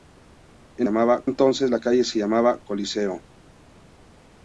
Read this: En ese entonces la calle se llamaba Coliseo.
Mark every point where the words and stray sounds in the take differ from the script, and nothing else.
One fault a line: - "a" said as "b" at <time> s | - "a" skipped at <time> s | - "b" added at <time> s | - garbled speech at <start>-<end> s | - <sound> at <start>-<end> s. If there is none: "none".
- "ese" said as "llamaba" at 0.8 s